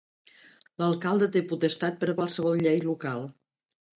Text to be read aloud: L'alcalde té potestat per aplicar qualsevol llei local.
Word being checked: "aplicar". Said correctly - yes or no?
no